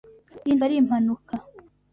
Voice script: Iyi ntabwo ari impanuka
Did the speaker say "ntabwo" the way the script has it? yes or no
no